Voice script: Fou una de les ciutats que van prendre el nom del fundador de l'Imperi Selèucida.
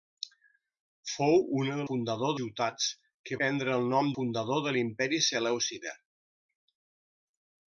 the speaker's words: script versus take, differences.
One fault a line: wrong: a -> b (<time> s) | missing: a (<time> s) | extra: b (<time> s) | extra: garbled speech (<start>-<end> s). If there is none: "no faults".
wrong: les -> fundador (1.9 s)
missing: van (3.4 s)
missing: del (4.1 s)